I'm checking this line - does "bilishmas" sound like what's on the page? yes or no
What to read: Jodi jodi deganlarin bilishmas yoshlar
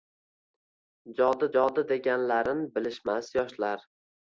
yes